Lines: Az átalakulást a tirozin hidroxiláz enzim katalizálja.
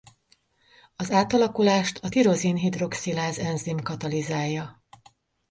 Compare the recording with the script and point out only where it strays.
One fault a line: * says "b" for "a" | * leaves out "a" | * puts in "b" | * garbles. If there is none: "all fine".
all fine